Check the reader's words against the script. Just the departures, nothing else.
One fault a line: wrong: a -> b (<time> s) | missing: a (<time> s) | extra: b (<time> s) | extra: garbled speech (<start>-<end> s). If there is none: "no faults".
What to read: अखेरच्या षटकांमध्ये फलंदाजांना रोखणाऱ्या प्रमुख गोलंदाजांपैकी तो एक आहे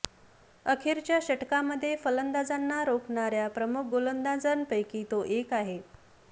no faults